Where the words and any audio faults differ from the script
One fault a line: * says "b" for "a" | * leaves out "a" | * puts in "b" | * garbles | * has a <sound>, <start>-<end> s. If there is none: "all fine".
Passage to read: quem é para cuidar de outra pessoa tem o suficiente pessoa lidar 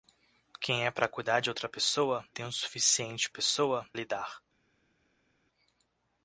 all fine